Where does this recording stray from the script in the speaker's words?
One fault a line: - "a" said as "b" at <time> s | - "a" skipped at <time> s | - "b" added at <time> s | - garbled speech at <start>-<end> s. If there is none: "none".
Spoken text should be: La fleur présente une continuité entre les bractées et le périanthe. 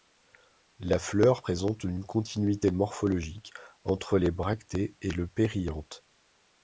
- "morphologique" added at 2.7 s